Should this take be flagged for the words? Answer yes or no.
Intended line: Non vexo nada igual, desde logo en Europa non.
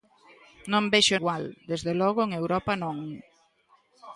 yes